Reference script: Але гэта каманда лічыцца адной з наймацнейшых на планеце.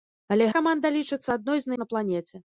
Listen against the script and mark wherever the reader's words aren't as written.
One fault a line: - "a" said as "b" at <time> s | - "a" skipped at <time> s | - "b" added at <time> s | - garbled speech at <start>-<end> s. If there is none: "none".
- "гэта" skipped at 0.5 s
- "наймацнейшых" skipped at 1.7 s